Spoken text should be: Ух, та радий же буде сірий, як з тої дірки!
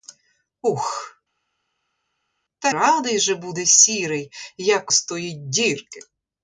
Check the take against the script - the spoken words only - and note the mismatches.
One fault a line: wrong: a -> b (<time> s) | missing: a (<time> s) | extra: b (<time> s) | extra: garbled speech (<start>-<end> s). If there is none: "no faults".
no faults